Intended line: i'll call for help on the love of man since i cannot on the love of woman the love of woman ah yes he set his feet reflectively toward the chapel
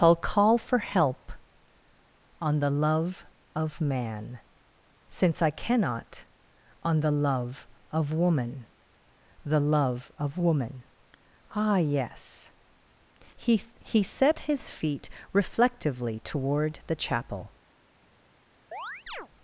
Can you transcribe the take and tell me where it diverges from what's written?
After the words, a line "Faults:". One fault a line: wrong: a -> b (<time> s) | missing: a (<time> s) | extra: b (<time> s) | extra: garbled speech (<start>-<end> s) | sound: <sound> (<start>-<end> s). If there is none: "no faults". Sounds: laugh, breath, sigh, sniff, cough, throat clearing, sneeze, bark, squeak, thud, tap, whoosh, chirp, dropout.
i'll call for help on the love of man since i cannot on the love of woman the love of woman ah yes he he set his feet reflectively toward the chapel
Faults:
extra: he (13.8 s)
sound: chirp (18.7-19.3 s)